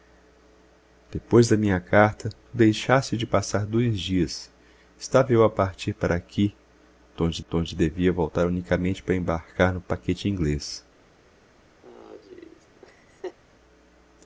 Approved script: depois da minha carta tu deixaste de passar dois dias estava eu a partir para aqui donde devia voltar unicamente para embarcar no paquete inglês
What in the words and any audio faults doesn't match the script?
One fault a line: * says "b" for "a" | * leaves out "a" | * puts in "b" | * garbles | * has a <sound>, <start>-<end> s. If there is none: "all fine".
* puts in "donde"
* has a laugh, 11.8-13.4 s